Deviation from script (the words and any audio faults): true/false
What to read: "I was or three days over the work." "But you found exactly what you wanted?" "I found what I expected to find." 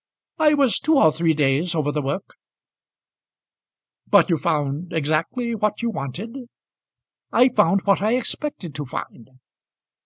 true